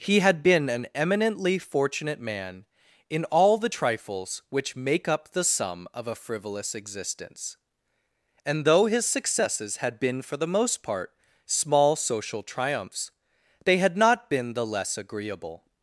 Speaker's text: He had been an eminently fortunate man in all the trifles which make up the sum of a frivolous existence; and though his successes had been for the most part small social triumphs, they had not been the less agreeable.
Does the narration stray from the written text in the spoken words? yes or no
no